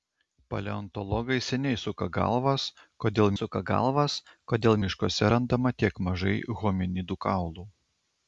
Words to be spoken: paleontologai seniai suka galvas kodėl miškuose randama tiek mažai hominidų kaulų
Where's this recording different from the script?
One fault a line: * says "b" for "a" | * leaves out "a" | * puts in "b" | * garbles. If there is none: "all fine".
* puts in "suka galvas kodėl"